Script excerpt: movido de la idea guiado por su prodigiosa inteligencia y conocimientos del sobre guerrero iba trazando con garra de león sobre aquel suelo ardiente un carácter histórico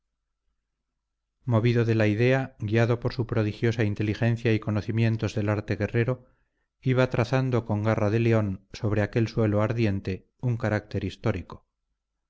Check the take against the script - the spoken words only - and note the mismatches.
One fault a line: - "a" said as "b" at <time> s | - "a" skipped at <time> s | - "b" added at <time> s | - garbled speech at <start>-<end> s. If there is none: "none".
- "sobre" said as "arte" at 5.5 s